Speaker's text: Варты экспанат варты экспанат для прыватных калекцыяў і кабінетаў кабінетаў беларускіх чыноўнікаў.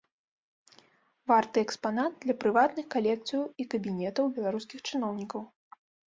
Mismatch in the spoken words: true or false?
true